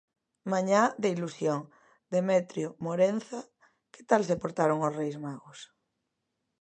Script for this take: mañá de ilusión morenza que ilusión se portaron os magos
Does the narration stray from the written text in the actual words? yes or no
yes